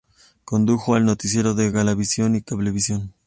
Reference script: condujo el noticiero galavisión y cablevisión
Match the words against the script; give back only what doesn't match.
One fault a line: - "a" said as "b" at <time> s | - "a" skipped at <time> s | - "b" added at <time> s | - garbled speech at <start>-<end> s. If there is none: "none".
- "de" added at 1.5 s